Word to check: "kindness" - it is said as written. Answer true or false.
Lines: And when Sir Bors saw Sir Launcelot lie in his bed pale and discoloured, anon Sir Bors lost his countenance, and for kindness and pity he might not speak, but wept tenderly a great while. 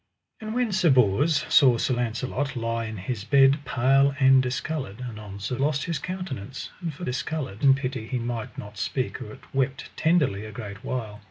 false